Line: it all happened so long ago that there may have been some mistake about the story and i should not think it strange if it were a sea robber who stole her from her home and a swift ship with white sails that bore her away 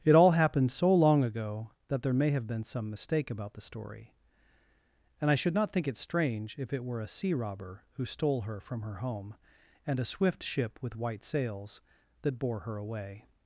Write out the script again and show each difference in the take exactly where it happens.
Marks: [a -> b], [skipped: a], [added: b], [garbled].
it all happened so long ago that there may have been some mistake about the story and i should not think it strange if it were a sea robber who stole her from her home and a swift ship with white sails that bore her away